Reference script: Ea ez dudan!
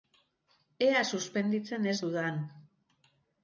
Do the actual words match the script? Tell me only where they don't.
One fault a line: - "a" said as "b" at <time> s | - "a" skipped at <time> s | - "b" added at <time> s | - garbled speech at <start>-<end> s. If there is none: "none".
- "suspenditzen" added at 1.1 s